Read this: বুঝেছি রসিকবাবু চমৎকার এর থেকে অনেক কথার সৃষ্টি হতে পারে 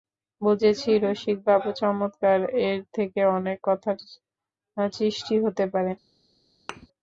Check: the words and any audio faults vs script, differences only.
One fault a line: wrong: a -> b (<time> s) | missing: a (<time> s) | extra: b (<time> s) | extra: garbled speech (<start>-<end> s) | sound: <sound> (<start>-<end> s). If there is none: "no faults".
sound: thud (6.7-6.9 s)